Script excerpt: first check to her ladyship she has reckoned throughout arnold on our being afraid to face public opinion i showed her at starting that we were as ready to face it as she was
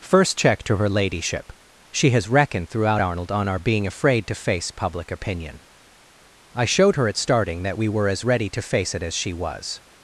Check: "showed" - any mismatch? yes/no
no